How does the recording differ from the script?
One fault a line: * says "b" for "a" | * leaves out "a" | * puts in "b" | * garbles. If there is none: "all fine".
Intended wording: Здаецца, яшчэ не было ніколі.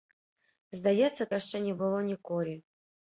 all fine